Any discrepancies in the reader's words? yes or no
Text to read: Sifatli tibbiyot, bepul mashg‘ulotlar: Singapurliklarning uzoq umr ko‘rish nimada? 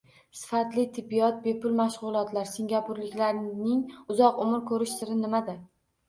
yes